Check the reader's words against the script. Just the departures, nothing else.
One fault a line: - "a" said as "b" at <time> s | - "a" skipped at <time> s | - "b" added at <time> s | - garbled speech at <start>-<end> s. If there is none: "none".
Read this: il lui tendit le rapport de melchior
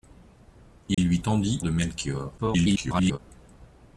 - "le rapport" skipped at 1.6 s
- garbled speech at 2.4-3.2 s